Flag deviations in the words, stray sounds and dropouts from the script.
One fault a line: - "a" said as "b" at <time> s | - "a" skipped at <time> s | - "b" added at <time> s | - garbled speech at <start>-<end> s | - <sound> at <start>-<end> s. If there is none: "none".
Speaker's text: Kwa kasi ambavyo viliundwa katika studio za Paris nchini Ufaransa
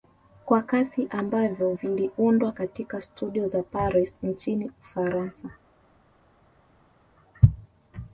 none